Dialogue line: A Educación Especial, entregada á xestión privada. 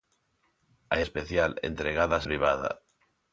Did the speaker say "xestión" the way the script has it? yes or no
no